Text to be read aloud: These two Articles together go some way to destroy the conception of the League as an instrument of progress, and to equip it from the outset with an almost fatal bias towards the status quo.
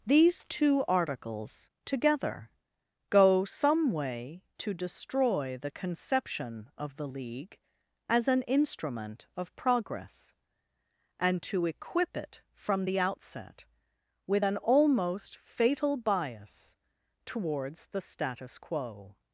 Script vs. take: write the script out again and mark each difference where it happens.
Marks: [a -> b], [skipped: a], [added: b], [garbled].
These two Articles together go some way to destroy the conception of the League as an instrument of progress, and to equip it from the outset with an almost fatal bias towards the status quo.